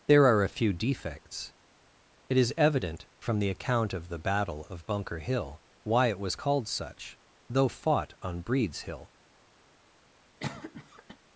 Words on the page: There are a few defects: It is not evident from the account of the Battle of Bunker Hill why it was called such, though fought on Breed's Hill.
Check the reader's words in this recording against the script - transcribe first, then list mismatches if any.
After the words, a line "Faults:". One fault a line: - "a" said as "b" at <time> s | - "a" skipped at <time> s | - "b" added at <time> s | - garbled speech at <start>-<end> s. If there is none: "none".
There are a few defects: It is evident from the account of the Battle of Bunker Hill why it was called such, though fought on Breed's Hill.
Faults:
- "not" skipped at 2.5 s